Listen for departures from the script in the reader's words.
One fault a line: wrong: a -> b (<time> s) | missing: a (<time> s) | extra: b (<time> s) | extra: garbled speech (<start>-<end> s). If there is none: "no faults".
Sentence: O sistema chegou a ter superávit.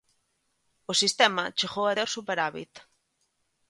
no faults